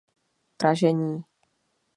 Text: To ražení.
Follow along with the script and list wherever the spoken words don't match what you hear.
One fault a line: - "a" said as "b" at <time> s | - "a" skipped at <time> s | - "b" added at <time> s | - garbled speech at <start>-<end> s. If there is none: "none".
none